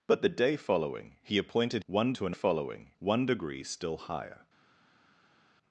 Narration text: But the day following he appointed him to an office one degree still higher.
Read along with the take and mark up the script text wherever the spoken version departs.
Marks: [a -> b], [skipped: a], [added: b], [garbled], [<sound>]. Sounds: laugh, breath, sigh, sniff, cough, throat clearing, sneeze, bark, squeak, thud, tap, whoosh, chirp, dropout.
But the day following he appointed [him -> one] to an [office -> following] one degree still higher.